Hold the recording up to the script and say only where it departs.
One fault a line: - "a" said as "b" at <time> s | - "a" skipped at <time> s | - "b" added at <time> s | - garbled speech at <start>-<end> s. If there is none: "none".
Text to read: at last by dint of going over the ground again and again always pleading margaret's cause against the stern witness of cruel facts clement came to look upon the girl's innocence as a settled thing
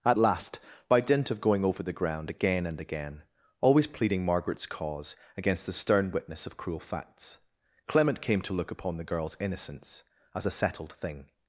none